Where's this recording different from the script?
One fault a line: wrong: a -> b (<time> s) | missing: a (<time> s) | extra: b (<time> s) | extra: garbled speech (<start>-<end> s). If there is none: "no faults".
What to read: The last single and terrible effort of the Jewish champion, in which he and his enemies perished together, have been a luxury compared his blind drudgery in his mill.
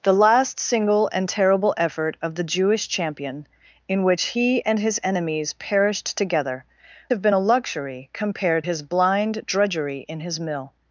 no faults